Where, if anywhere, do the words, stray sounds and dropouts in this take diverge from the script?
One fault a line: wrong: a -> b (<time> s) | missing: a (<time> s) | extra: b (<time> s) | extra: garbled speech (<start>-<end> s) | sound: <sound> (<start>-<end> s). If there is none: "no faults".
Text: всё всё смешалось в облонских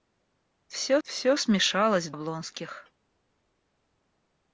no faults